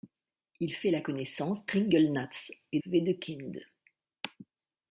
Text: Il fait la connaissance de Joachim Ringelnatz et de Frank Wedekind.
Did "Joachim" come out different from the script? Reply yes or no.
yes